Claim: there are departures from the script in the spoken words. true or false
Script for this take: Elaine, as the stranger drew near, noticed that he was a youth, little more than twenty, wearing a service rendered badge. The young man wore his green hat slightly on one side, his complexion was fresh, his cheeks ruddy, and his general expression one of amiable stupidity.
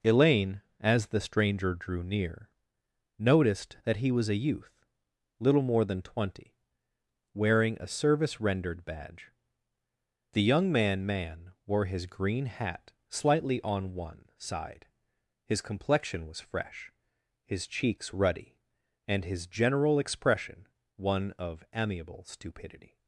true